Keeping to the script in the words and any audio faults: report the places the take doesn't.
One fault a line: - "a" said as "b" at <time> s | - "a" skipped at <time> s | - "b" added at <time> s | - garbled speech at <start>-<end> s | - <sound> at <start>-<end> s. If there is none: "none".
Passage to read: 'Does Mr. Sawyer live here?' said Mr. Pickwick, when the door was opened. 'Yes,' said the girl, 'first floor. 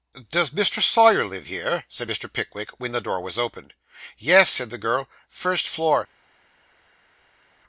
none